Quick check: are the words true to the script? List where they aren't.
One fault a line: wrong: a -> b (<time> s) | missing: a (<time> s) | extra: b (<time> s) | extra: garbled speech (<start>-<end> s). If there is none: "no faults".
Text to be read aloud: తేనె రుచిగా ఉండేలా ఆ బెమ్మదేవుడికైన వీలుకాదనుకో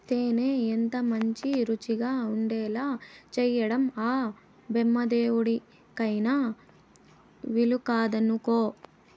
extra: ఎంతమంచి (0.7 s)
extra: చేయడం (3.3 s)